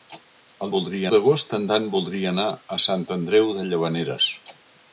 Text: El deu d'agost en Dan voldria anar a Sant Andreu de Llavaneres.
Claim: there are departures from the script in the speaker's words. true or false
true